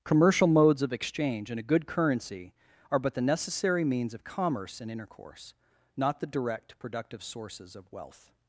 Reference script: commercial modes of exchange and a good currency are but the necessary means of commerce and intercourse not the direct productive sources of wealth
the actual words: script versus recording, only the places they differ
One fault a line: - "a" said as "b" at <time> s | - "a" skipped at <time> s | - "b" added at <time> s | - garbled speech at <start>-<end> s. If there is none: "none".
none